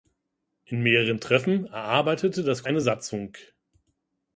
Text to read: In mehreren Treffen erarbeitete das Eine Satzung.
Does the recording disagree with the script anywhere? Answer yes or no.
no